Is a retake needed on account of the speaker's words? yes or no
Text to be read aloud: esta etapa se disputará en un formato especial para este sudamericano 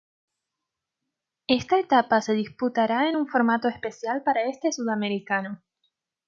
no